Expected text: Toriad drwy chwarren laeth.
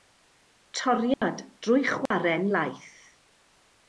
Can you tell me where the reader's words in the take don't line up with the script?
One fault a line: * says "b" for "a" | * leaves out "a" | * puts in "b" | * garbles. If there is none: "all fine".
all fine